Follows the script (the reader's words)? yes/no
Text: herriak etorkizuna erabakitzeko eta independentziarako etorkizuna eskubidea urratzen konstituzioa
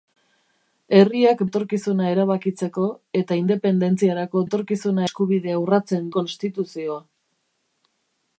yes